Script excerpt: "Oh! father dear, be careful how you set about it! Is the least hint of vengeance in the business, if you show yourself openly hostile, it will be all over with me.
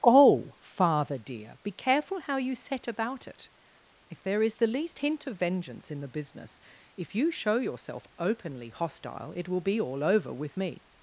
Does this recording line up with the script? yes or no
no